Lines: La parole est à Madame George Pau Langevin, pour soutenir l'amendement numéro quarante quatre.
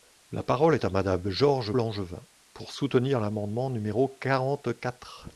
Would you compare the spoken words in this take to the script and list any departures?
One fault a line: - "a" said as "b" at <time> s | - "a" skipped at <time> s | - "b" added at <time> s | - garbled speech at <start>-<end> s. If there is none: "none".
- "Pau" skipped at 1.7 s